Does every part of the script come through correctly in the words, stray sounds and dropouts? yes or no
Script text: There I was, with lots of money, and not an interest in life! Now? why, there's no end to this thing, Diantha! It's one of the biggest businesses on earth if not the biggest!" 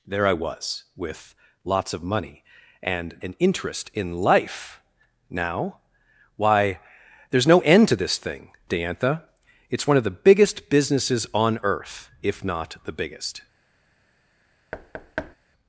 no